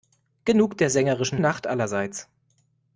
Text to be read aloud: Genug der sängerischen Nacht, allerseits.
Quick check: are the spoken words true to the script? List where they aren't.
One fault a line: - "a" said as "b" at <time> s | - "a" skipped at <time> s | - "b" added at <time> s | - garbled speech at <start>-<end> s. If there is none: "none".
none